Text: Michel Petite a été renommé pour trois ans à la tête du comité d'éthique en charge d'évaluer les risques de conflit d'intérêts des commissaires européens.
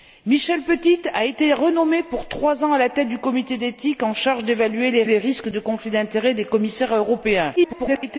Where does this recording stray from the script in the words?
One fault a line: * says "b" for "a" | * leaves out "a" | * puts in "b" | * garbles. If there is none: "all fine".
* puts in "les"
* garbles